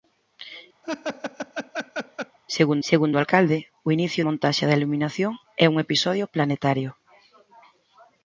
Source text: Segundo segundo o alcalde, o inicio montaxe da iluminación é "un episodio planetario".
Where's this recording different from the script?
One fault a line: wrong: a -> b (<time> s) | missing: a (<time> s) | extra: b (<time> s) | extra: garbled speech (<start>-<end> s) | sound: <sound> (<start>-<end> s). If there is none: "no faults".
sound: laugh (0.8-2.4 s)